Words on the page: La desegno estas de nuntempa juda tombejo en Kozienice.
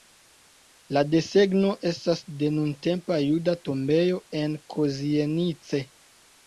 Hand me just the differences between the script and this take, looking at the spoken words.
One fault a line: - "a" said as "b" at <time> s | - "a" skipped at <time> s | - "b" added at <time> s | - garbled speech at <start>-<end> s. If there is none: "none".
none